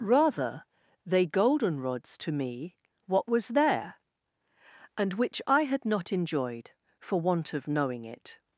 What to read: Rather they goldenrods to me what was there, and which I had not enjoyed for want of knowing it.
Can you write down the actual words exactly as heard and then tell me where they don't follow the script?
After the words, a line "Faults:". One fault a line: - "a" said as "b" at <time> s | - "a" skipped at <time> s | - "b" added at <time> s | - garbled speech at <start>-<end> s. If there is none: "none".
Rather they goldenrods to me what was there, and which I had not enjoyed for want of knowing it.
Faults:
none